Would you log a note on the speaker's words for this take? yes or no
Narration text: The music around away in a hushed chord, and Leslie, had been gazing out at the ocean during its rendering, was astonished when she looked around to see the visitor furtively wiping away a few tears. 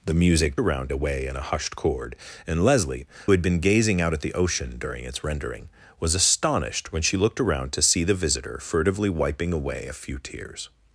no